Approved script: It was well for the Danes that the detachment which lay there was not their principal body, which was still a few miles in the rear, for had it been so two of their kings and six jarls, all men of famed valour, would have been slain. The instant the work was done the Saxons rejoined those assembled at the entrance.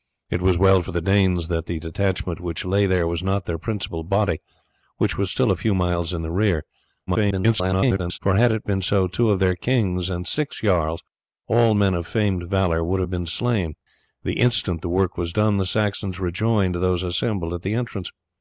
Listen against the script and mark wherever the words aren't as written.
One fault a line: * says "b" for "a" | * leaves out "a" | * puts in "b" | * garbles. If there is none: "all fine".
* garbles